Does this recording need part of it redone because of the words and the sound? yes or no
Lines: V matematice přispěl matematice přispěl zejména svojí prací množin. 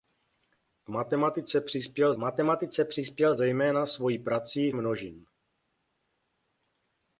no